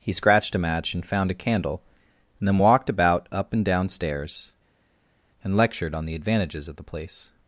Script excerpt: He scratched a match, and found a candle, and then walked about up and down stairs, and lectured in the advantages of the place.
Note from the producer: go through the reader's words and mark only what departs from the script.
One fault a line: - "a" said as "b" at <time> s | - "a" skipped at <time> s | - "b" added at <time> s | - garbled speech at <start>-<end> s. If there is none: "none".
- "in" said as "on" at 5.9 s